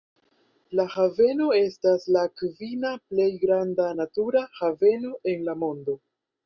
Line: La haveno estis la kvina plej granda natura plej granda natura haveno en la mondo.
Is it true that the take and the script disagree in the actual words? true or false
true